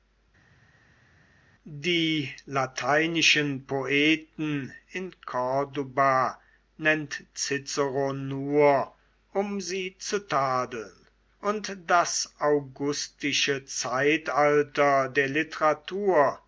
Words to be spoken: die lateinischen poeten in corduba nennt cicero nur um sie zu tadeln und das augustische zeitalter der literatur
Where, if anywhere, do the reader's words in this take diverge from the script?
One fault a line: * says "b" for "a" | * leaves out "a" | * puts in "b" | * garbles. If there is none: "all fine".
all fine